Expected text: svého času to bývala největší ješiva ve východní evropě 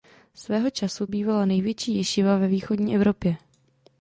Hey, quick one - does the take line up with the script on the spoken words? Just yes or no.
no